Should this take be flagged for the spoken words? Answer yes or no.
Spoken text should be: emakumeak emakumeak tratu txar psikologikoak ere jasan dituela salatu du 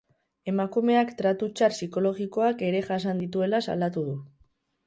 yes